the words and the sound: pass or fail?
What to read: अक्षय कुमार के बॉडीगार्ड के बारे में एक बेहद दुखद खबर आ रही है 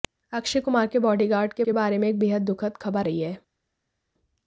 fail